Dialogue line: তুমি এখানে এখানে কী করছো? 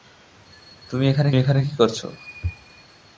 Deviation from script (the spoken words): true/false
false